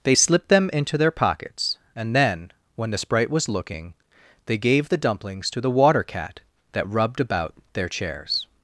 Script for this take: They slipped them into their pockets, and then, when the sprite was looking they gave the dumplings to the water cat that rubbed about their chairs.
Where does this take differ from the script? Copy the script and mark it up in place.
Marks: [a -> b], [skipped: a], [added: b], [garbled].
They slipped them into their pockets, and then, when the sprite was looking they gave the dumplings to the water cat that rubbed about their chairs.